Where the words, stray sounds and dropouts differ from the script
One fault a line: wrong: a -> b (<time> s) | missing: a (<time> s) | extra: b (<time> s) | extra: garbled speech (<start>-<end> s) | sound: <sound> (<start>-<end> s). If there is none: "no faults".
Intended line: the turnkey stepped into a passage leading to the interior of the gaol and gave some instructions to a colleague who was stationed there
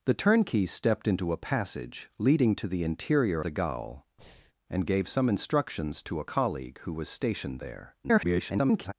missing: of (3.4 s)
sound: breath (4.2-4.5 s)
extra: garbled speech (8.0-8.9 s)